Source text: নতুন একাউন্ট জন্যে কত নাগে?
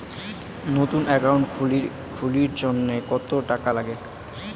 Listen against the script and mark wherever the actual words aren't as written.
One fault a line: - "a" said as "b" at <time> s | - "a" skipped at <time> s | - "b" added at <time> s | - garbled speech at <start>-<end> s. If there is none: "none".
- "খুলির" added at 2.1 s
- "টাকা" added at 3.5 s